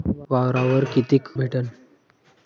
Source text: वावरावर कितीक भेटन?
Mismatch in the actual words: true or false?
false